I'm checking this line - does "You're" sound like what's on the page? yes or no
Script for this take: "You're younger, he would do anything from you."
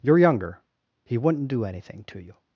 yes